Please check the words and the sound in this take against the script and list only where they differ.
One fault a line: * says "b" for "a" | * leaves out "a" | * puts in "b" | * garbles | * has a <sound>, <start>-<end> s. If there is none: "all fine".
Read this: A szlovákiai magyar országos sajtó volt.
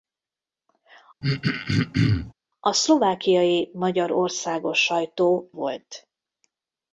* has a throat clearing, 1.2-2.3 s